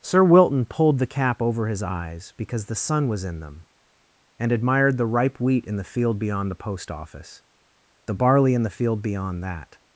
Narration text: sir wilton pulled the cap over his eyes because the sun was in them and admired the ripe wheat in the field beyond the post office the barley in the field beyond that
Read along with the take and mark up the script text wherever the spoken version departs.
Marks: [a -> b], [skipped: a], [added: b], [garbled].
sir wilton pulled the cap over his eyes because the sun was in them and admired the ripe wheat in the field beyond the post office the barley in the field beyond that